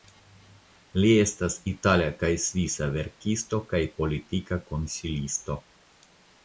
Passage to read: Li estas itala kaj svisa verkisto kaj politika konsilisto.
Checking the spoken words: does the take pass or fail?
pass